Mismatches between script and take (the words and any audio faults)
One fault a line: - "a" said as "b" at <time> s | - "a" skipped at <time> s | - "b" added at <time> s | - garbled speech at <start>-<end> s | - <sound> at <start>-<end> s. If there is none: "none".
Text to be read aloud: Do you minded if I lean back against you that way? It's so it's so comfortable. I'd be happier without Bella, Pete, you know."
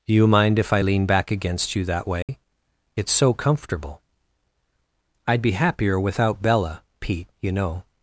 - "minded" said as "mind" at 0.3 s
- dropout at 2.2-2.3 s
- "it's so" skipped at 3.3 s